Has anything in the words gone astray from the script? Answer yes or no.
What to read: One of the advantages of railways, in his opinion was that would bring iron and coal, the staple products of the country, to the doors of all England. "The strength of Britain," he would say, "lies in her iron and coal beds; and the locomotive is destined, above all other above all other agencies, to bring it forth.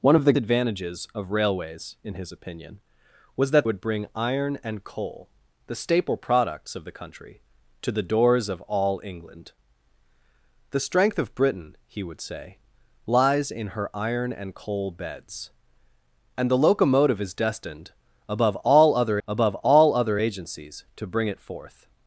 no